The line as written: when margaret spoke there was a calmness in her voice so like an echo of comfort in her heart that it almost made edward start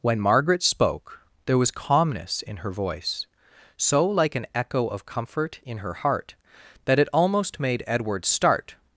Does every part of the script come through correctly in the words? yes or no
no